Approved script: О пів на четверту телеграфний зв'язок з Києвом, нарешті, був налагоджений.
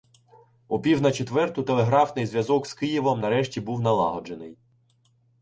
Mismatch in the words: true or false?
false